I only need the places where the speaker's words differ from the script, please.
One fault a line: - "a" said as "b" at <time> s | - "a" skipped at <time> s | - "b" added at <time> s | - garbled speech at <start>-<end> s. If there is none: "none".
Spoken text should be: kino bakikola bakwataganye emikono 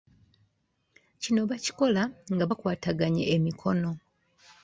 - "nga" added at 2.3 s